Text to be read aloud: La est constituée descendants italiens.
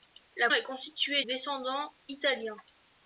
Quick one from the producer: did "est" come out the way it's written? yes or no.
yes